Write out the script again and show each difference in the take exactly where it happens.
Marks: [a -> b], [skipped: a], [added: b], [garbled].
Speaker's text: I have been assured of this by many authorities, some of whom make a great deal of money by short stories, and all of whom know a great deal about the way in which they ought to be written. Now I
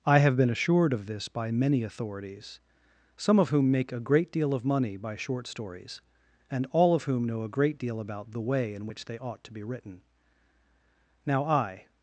I have been assured of this by many authorities, some of whom make a great deal of money by short stories, and all of whom know a great deal about the way in which they ought to be written. Now I